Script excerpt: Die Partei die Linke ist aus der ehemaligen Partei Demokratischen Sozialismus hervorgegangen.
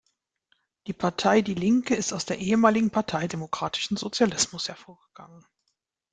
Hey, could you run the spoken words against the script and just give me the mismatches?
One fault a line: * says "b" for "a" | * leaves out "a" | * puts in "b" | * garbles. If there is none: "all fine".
all fine